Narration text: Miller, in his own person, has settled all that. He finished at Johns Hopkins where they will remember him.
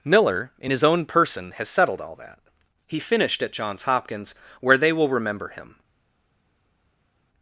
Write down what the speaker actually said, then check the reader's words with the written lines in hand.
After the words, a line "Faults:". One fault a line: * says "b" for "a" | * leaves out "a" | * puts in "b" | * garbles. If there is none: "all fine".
Miller, in his own person, has settled all that. He finished at Johns Hopkins where they will remember him.
Faults:
all fine